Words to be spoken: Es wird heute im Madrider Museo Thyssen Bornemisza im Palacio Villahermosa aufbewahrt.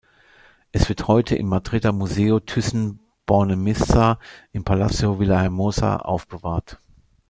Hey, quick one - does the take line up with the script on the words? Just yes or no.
yes